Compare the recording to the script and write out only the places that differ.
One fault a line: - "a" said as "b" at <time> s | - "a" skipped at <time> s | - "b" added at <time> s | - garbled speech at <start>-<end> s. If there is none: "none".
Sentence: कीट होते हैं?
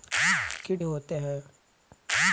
none